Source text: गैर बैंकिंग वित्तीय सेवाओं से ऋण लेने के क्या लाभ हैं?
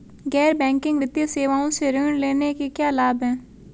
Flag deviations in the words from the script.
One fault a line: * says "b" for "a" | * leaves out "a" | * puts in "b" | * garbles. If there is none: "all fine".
all fine